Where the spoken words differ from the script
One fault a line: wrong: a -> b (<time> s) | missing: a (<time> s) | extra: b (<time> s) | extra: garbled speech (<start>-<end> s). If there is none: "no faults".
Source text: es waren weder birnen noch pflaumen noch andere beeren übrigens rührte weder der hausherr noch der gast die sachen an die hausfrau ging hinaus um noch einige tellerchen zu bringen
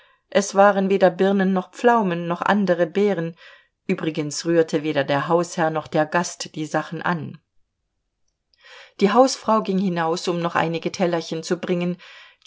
no faults